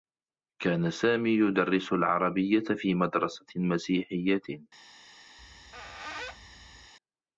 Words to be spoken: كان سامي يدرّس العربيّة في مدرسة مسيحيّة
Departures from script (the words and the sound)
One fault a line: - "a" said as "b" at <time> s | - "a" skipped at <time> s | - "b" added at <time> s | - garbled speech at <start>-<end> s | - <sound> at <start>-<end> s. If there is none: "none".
- squeak at 5.4-6.9 s